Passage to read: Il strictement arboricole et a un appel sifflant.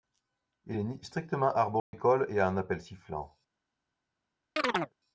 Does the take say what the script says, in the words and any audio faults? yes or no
no